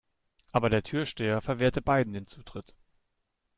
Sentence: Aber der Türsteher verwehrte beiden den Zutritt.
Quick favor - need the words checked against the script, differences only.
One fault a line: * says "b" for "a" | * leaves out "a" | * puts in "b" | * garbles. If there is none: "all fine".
all fine